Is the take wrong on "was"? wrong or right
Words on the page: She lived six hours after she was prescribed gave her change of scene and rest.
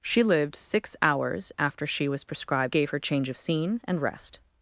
right